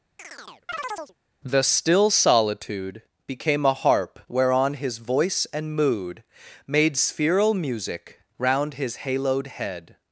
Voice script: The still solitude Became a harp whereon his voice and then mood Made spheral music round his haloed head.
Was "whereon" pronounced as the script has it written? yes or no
yes